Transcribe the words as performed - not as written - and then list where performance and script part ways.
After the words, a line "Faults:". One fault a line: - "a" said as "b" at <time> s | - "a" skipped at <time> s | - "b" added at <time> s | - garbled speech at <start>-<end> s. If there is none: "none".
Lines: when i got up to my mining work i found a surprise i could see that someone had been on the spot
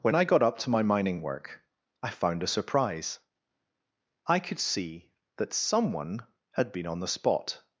when i got up to my mining work i found a surprise i could see that someone had been on the spot
Faults:
none